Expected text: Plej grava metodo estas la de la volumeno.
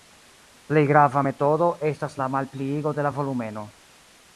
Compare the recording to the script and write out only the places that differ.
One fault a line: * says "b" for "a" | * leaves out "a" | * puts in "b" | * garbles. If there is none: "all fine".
* puts in "malpliigo"